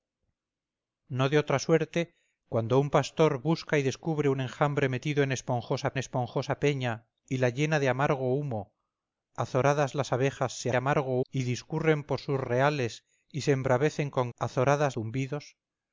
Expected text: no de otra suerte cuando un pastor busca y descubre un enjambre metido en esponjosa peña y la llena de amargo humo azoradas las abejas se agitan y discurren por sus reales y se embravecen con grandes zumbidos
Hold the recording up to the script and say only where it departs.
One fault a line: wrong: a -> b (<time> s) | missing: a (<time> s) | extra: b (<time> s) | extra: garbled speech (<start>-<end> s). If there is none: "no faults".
extra: esponjosa (6.0 s)
wrong: agitan -> amargo (10.7 s)
wrong: grandes -> azoradas (14.4 s)